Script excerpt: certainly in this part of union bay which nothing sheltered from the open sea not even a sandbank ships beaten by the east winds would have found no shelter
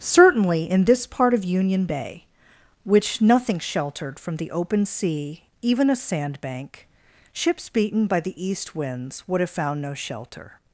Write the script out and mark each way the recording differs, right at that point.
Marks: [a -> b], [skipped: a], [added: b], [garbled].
certainly in this part of union bay which nothing sheltered from the open sea [skipped: not] even a sandbank ships beaten by the east winds would have found no shelter